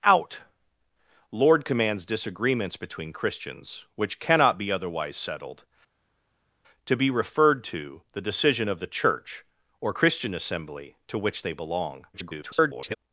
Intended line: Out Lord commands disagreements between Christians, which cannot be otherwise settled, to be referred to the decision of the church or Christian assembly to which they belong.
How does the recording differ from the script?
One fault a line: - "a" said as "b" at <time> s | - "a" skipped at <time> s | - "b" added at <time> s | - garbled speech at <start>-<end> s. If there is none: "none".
- garbled speech at 12.1-13.0 s